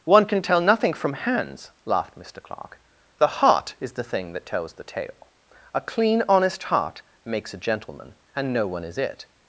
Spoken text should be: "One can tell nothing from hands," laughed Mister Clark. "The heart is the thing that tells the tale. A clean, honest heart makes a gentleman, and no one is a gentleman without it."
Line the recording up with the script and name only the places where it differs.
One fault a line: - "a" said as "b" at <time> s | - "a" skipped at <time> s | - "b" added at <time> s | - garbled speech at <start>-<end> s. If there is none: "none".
- "a gentleman without" skipped at 9.0 s